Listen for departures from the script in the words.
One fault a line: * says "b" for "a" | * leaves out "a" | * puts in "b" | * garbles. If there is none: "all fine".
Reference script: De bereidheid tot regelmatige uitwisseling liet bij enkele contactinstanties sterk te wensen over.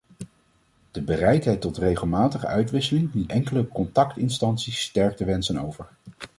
* leaves out "bij"